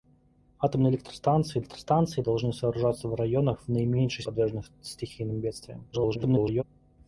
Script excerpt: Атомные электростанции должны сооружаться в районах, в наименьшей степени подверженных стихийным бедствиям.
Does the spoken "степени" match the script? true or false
false